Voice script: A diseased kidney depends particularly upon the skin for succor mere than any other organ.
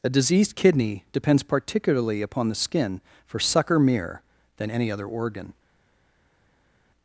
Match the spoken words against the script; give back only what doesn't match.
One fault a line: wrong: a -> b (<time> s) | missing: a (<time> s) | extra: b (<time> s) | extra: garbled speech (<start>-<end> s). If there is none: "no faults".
no faults